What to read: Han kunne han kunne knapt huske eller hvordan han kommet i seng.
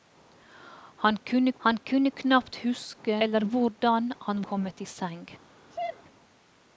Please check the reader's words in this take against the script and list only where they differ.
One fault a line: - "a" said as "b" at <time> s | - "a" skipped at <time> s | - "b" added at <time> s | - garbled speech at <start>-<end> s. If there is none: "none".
none